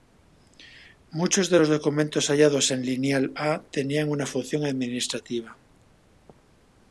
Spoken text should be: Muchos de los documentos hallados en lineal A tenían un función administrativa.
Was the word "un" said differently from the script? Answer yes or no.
yes